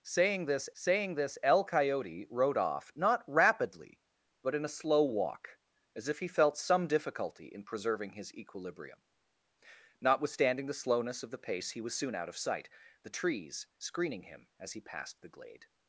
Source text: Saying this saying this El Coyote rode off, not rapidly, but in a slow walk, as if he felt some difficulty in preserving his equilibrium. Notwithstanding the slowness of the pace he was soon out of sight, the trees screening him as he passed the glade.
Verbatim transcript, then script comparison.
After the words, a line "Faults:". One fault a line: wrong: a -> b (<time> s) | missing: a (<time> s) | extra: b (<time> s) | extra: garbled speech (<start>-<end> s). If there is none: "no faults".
Saying this saying this El Coyote rode off, not rapidly, but in a slow walk, as if he felt some difficulty in preserving his equilibrium. Notwithstanding the slowness of the pace he was soon out of sight, the trees screening him as he passed the glade.
Faults:
no faults